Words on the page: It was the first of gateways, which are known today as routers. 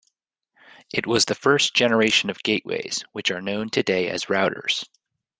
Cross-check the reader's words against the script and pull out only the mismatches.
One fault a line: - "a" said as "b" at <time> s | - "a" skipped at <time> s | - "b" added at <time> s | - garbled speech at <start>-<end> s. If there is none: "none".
- "generation" added at 1.7 s